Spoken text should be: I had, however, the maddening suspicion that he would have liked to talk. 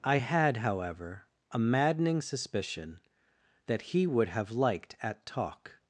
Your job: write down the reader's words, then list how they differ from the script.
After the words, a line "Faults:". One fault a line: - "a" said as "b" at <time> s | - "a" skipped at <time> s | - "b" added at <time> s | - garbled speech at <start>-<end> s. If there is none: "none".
I had, however, a maddening suspicion that he would have liked at talk.
Faults:
- "the" said as "a" at 1.5 s
- "to" said as "at" at 5.0 s